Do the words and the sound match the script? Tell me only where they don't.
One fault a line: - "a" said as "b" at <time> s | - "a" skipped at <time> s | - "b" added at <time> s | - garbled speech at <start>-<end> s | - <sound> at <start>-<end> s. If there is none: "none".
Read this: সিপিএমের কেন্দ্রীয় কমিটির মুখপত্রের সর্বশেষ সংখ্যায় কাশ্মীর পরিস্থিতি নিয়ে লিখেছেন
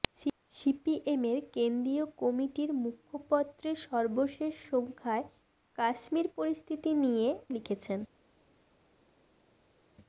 none